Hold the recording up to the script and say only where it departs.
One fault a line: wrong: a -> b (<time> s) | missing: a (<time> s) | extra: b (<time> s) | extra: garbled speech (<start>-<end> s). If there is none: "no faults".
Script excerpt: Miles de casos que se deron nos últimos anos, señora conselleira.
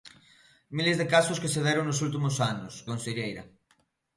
missing: señora (2.7 s)